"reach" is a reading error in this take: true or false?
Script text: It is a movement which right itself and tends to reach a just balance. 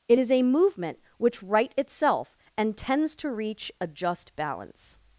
false